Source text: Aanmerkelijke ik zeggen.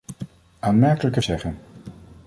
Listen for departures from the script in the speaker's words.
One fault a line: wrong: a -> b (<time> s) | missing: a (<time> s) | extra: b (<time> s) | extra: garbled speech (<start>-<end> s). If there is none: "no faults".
no faults